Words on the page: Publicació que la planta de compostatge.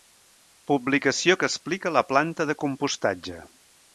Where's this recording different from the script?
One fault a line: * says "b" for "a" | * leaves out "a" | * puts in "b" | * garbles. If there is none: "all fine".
* puts in "explica"